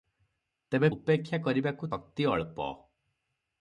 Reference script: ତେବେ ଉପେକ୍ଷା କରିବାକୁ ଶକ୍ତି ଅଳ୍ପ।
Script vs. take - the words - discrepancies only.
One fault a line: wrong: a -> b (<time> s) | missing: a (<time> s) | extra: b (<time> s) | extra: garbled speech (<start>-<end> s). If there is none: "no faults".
no faults